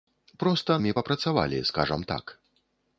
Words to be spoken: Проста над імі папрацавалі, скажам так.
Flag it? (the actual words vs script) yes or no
yes